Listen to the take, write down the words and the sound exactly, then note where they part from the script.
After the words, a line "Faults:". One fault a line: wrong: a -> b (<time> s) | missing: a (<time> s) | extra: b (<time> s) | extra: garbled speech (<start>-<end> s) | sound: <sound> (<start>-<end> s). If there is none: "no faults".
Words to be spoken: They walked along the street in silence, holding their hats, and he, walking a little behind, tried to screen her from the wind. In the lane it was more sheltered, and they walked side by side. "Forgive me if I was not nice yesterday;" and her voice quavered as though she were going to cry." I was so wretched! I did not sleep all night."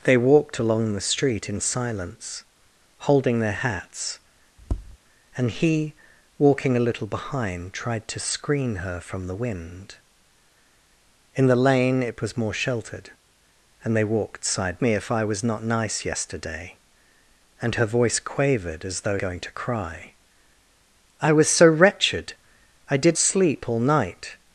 They walked along the street in silence, holding their hats, and he, walking a little behind, tried to screen her from the wind. In the lane it was more sheltered, and they walked side me if I was not nice yesterday;" and her voice quavered as though going to cry." I was so wretched! I did sleep all night."
Faults:
sound: tap (4.6-5.0 s)
missing: by side Forgive (14.8 s)
missing: she were (19.2 s)
missing: not (23.2 s)